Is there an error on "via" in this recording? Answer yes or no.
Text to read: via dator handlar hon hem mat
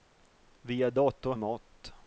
no